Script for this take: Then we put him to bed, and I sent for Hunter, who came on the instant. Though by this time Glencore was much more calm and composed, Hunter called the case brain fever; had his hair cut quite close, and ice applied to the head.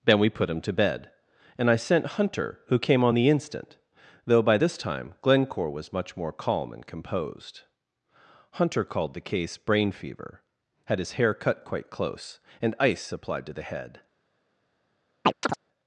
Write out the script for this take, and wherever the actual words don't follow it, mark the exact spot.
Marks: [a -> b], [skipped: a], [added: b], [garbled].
Then we put him to bed, and I sent [skipped: for] Hunter, who came on the instant. Though by this time Glencore was much more calm and composed, Hunter called the case brain fever; had his hair cut quite close, and ice applied to the head.